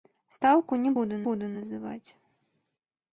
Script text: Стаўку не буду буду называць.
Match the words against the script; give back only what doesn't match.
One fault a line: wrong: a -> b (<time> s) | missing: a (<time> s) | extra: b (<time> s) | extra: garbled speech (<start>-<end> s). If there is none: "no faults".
no faults